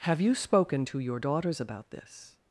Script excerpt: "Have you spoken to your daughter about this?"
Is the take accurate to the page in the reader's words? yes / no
no